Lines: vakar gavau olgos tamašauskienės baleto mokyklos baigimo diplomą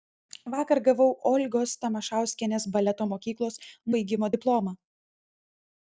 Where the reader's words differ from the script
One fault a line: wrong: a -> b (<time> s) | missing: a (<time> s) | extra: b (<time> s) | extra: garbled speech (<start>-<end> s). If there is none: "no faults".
no faults